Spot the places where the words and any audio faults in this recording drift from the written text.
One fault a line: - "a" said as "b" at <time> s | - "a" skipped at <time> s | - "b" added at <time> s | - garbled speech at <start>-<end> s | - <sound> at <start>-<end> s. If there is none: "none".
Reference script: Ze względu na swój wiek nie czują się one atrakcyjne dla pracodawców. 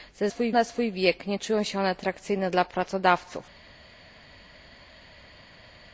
- "względu" said as "swój" at 0.2 s